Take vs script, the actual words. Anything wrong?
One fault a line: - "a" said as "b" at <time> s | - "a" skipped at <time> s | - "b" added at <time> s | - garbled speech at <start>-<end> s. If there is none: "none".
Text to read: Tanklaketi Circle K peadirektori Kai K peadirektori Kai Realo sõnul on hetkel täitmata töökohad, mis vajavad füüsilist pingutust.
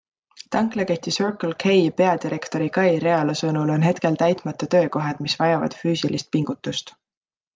- "K peadirektori Kai" skipped at 2.9 s